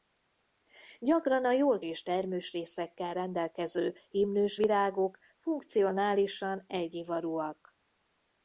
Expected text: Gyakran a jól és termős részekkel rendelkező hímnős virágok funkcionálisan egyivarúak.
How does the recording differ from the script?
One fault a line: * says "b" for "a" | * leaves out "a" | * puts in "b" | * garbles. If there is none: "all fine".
all fine